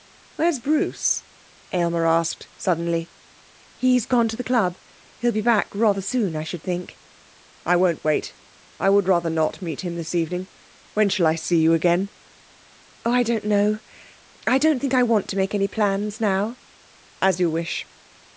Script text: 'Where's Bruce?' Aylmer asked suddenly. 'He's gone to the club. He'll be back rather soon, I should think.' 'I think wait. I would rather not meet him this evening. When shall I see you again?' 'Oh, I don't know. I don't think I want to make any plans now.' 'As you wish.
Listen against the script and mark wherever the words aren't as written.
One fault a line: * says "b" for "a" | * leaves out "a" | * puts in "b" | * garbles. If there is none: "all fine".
* says "won't" for "think"